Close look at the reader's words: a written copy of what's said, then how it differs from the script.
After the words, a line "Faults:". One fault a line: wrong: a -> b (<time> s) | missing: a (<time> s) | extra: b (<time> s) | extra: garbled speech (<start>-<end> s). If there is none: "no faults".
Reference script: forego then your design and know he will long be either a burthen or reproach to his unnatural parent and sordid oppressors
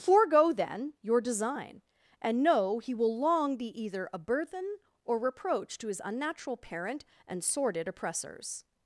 forego then your design and know he will long be either a burthen or reproach to his unnatural parent and sordid oppressors
Faults:
no faults